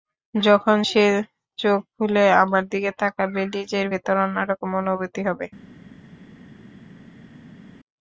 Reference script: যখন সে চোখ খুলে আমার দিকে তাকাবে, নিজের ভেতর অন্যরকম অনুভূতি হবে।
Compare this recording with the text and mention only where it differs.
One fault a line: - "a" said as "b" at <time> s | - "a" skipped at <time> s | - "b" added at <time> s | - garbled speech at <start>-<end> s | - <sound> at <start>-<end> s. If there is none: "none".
none